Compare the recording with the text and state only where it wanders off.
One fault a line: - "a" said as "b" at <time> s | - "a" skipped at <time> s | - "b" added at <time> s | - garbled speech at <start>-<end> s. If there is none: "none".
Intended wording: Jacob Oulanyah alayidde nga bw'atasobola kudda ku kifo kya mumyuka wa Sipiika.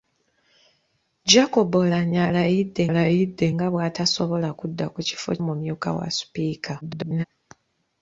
- "alayidde" added at 2.9 s
- "kya" skipped at 5.3 s
- garbled speech at 6.8-7.2 s